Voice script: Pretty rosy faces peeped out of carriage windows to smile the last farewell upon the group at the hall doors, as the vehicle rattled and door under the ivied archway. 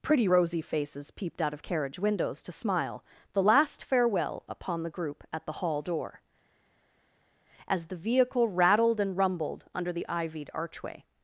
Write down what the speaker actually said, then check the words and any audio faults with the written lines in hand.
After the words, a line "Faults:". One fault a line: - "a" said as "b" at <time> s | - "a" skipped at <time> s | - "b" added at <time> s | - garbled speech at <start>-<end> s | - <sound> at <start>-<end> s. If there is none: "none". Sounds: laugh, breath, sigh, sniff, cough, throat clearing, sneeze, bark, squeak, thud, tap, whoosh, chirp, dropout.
Pretty rosy faces peeped out of carriage windows to smile the last farewell upon the group at the hall door, as the vehicle rattled and rumbled under the ivied archway.
Faults:
- "doors" said as "door" at 5.8 s
- "door" said as "rumbled" at 9.2 s